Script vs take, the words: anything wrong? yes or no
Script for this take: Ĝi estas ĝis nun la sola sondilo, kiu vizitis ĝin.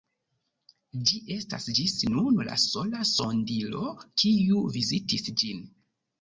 no